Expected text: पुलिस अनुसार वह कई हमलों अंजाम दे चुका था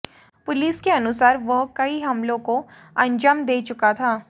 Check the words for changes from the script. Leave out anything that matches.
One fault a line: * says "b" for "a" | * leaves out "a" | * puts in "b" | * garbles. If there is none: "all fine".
* puts in "के"
* puts in "को"